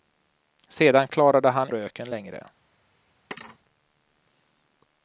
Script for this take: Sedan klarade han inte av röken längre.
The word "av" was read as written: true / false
false